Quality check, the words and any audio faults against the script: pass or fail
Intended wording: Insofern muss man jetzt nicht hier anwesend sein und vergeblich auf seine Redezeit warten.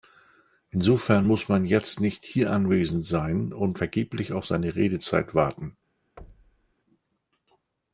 fail